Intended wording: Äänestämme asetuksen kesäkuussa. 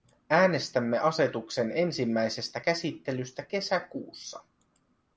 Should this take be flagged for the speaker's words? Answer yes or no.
yes